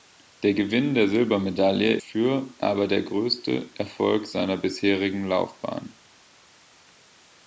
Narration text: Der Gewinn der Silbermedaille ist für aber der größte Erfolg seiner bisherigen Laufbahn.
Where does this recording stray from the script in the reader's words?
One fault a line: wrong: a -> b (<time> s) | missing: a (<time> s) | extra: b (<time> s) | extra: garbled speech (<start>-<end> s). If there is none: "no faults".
missing: ist (1.9 s)